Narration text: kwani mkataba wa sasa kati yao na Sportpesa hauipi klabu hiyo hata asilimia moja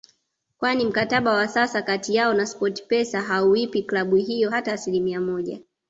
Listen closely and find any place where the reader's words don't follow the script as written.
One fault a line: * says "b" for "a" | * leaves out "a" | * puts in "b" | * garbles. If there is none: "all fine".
all fine